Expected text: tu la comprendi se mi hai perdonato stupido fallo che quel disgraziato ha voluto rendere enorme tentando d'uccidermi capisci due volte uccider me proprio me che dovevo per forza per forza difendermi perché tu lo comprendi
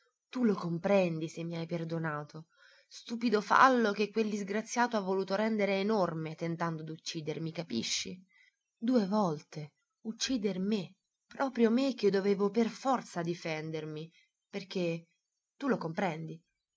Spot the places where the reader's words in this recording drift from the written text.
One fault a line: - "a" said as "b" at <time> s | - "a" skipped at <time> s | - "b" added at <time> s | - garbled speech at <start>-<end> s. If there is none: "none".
- "la" said as "lo" at 0.4 s
- "per forza" skipped at 13.2 s